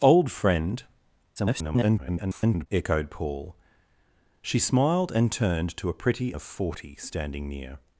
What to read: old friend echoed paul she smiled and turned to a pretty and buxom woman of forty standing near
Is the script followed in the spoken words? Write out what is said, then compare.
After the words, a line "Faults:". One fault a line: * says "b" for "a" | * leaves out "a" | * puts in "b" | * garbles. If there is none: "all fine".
old friend [garbled] echoed paul she smiled and turned to a pretty of forty standing near
Faults:
* garbles
* leaves out "and buxom woman"